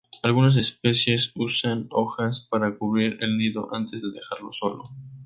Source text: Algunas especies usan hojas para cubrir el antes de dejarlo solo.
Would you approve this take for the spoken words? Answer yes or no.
no